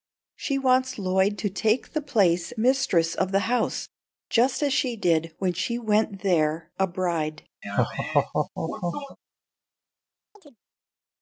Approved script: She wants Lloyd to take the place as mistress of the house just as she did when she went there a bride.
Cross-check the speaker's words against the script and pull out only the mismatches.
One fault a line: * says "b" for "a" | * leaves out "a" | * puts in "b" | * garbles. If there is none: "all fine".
* leaves out "as"